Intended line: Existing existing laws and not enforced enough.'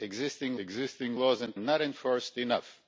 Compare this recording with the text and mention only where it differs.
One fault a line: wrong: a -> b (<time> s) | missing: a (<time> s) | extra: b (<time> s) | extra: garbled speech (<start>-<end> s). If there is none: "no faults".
no faults